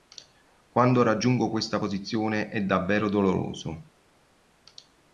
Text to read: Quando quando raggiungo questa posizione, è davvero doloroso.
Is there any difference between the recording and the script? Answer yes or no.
yes